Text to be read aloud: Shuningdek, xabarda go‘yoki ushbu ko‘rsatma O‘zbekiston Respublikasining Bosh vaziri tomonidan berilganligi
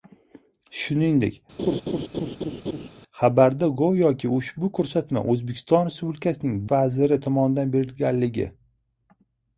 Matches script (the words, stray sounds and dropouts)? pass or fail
fail